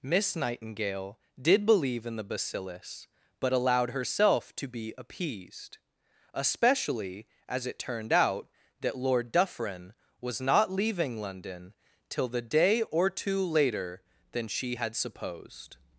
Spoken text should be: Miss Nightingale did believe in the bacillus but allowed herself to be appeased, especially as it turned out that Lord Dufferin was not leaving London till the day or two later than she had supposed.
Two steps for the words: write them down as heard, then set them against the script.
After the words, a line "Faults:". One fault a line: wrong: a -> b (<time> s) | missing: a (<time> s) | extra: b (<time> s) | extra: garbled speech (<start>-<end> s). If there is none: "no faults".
Miss Nightingale did believe in the bacillus but allowed herself to be appeased, especially as it turned out that Lord Dufferin was not leaving London till the day or two later than she had supposed.
Faults:
no faults